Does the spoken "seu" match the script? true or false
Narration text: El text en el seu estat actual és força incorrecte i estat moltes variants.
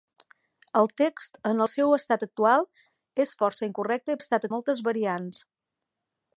true